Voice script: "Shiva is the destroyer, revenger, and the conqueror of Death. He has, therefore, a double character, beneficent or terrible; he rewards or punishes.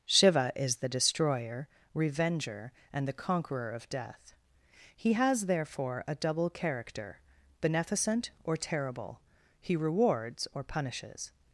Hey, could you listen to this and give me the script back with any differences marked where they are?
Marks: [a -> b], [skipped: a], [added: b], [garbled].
"Shiva is the destroyer, revenger, and the conqueror of Death. He has, therefore, a double character, beneficent or terrible; he rewards or punishes.